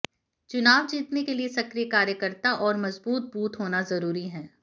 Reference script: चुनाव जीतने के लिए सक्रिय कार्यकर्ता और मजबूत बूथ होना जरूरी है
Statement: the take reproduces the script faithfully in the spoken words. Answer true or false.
true